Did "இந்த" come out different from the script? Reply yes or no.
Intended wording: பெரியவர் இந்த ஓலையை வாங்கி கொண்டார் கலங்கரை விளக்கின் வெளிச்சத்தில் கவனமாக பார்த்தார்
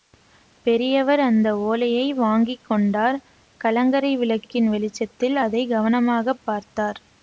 yes